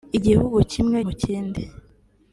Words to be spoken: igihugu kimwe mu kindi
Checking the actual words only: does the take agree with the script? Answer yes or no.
yes